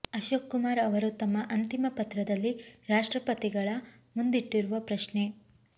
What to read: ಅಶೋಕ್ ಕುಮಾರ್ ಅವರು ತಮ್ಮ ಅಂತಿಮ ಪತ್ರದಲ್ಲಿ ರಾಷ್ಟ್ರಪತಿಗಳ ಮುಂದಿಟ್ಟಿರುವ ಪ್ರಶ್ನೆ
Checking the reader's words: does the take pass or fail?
pass